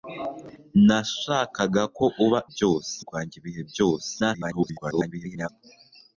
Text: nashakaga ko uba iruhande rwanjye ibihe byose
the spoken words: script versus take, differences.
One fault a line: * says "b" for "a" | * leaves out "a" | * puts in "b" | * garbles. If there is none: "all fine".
* says "byose" for "iruhande"
* garbles